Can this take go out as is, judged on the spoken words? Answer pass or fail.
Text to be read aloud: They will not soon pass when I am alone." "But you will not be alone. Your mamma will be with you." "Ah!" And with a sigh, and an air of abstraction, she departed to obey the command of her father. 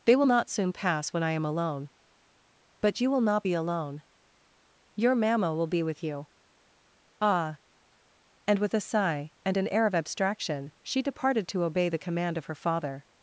pass